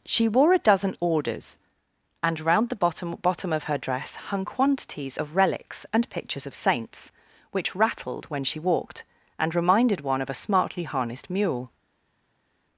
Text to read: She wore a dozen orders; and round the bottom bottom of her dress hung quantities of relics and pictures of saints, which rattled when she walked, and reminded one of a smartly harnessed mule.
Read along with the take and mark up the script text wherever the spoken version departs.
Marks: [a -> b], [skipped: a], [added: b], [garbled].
She wore a dozen orders; and round the bottom bottom of her dress hung quantities of relics and pictures of saints, which rattled when she walked, and reminded one of a smartly harnessed mule.